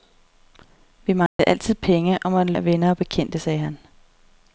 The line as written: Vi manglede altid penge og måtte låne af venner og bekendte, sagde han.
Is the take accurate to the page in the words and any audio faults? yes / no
no